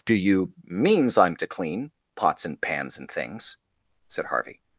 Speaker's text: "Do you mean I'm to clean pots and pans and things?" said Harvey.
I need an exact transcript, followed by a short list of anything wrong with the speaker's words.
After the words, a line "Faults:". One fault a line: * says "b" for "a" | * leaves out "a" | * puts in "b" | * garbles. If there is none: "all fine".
"Do you means I'm to clean pots and pans and things?" said Harvey.
Faults:
* says "means" for "mean"